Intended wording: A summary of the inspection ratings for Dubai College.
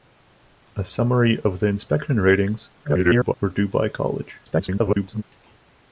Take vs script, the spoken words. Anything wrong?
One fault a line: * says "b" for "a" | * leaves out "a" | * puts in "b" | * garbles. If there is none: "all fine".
* garbles
* garbles